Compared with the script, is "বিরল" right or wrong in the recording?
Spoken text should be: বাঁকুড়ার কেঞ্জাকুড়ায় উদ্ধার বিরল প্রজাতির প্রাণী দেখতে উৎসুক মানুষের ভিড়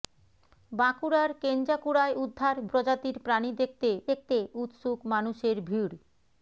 wrong